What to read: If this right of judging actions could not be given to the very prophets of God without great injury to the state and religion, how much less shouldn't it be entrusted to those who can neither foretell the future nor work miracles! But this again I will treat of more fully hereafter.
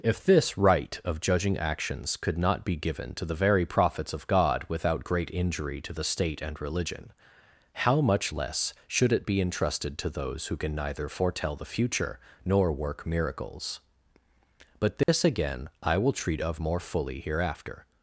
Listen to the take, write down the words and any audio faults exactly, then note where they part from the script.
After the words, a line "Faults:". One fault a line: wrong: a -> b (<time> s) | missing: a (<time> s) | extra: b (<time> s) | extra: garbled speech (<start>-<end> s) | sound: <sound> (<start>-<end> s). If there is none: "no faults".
If this right of judging actions could not be given to the very prophets of God without great injury to the state and religion, how much less should it be entrusted to those who can neither foretell the future nor work miracles! But this again I will treat of more fully hereafter.
Faults:
wrong: shouldn't -> should (8.9 s)
sound: dropout (15.0-15.1 s)